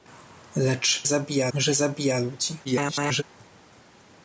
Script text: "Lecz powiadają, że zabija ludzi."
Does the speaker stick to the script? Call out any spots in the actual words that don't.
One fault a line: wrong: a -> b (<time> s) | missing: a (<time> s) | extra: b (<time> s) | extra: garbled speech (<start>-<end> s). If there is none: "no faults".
wrong: powiadają -> zabija (1.0 s)
extra: garbled speech (2.6-3.2 s)